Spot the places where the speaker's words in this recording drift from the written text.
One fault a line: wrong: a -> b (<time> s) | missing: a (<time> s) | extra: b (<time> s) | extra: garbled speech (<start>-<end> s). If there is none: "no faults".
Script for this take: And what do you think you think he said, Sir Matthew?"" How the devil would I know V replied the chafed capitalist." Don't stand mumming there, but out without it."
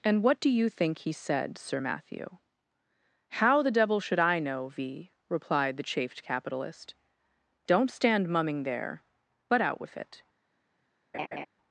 missing: you think (1.0 s)
wrong: would -> should (4.0 s)
wrong: without -> with (9.8 s)